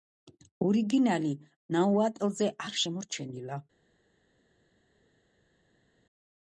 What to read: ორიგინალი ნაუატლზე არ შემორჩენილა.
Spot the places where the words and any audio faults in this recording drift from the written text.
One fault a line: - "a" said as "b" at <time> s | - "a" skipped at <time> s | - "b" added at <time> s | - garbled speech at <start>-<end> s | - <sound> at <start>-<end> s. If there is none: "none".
none